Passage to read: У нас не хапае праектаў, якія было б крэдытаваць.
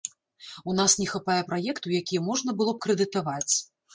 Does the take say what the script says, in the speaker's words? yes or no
no